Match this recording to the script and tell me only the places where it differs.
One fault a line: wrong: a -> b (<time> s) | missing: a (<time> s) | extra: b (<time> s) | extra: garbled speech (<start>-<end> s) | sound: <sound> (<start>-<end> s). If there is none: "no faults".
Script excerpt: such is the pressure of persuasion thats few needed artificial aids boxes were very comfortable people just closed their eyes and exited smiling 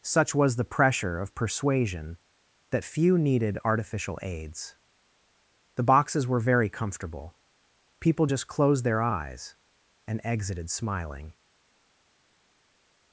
wrong: is -> was (0.3 s)
wrong: thats -> that (2.7 s)
extra: the (5.7 s)